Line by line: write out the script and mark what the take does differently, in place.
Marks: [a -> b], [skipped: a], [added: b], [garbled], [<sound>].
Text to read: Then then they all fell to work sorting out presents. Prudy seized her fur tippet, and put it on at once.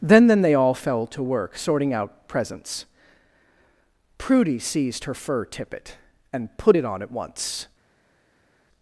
Then then they all fell to work sorting out presents. Prudy seized her fur tippet, and put it on at once.